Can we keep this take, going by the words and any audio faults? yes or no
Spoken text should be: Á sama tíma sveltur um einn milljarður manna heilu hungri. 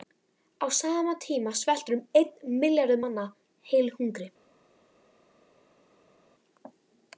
yes